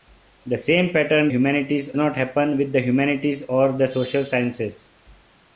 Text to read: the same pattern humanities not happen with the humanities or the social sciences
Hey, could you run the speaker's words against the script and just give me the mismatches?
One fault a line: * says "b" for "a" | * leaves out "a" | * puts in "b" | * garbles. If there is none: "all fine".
all fine